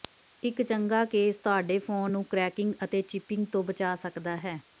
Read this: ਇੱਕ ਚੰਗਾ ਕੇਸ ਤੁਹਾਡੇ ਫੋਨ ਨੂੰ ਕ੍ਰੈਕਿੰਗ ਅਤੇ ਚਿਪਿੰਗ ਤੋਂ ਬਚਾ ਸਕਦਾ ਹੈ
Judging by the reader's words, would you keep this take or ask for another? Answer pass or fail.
pass